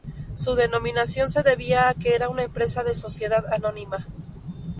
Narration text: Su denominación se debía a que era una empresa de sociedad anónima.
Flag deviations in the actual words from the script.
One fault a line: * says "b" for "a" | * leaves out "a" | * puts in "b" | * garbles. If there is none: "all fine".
all fine